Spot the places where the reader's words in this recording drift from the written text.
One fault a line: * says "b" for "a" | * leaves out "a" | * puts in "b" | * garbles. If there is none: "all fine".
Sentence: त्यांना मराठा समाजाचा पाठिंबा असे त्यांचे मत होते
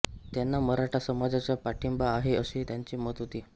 * puts in "आहे"